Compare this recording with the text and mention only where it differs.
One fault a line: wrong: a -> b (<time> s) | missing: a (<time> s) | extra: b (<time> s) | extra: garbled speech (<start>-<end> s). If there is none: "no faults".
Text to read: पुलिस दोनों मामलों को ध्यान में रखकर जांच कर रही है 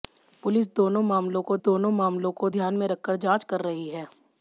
extra: दोनों मामलों को (1.6 s)